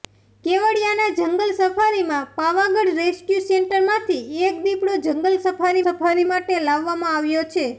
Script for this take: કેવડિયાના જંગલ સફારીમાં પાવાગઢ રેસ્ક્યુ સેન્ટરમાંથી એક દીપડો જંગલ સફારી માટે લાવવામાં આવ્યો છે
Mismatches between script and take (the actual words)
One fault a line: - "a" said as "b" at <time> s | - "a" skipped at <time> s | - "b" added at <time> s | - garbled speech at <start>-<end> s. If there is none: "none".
- "સફારી" added at 5.8 s